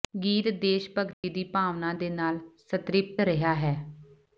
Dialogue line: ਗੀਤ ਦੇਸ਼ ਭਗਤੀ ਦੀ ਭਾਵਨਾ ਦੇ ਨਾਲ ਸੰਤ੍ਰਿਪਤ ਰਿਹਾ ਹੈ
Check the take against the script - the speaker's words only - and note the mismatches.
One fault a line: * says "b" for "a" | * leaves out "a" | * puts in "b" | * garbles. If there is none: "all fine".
all fine